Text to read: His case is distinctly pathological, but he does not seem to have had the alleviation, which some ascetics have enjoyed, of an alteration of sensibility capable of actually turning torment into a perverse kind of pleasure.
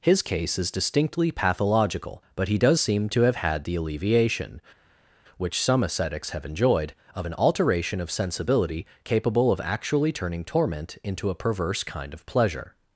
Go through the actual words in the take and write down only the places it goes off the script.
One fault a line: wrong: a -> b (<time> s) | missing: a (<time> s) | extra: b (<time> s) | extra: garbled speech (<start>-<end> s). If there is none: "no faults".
missing: not (2.8 s)